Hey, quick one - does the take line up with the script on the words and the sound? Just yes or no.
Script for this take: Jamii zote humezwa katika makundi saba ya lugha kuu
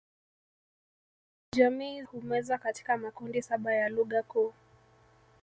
no